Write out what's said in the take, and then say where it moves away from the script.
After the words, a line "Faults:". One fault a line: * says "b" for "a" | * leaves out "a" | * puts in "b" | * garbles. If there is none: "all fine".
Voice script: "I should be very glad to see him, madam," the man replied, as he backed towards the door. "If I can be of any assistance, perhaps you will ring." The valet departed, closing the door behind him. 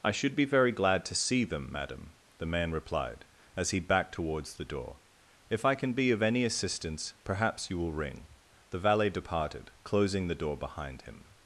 "I should be very glad to see them, madam," the man replied, as he backed towards the door. "If I can be of any assistance, perhaps you will ring." The valet departed, closing the door behind him.
Faults:
* says "them" for "him"